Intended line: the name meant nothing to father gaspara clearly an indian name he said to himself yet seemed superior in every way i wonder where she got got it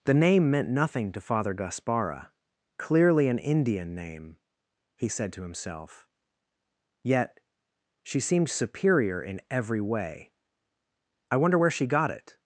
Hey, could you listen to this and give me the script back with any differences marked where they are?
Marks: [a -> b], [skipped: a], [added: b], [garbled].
the name meant nothing to father gaspara clearly an indian name he said to himself yet [added: she] seemed superior in every way i wonder where she got [skipped: got] it